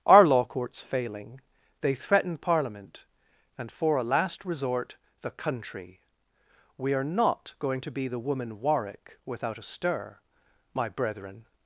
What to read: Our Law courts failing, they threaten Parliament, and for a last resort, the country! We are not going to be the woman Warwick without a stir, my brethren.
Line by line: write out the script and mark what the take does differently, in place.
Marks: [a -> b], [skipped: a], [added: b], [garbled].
Our Law courts failing, they threaten Parliament, and for a last resort, the country! We are not going to be the woman Warwick without a stir, my brethren.